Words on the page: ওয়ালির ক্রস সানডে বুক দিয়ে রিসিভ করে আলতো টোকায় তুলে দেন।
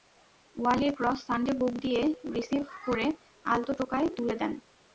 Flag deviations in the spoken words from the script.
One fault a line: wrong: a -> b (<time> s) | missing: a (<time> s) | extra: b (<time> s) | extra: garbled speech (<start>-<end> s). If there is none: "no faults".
no faults